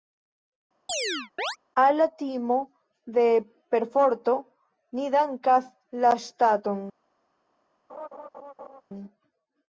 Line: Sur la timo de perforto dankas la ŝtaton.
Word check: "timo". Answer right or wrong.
right